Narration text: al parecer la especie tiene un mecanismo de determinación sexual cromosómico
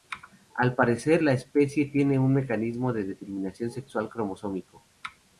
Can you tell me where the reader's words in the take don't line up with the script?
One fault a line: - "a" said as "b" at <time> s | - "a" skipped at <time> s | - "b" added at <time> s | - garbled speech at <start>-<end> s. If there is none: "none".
none